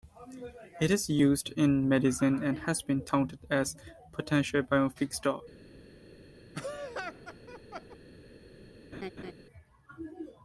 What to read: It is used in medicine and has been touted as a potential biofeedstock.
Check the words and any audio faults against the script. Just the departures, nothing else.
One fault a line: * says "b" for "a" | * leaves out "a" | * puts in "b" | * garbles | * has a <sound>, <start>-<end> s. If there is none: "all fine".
* has a laugh, 6.5-8.0 s
* has a laugh, 8.9-9.3 s